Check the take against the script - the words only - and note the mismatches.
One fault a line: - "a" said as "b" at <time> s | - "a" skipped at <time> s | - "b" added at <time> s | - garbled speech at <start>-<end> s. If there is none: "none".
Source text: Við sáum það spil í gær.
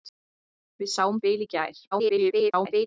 - "það" skipped at 1.2 s
- garbled speech at 1.9-2.9 s